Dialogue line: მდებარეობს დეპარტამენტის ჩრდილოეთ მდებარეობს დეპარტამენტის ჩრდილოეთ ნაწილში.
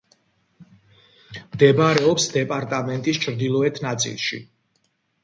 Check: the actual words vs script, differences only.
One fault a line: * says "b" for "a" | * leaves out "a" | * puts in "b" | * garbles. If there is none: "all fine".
* leaves out "მდებარეობს დეპარტამენტის ჩრდილოეთ"